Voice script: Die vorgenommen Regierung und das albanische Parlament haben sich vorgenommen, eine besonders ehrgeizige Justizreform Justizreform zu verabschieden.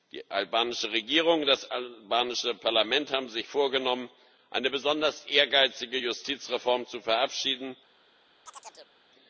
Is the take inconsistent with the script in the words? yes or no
yes